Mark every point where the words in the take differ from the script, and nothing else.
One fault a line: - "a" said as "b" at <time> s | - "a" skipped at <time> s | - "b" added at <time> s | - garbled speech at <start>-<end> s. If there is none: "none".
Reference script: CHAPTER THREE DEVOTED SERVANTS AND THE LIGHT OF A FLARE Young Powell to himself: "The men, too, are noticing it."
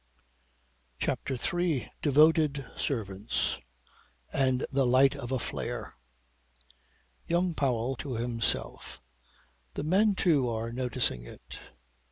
none